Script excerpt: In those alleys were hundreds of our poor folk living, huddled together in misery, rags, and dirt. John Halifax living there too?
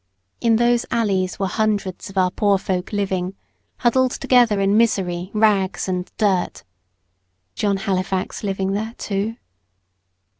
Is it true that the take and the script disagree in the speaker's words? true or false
false